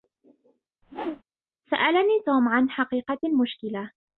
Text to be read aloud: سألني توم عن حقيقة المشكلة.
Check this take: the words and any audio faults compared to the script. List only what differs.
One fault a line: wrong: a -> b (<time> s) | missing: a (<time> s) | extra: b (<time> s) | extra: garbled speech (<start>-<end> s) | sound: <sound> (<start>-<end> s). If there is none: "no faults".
sound: whoosh (0.8-1.2 s)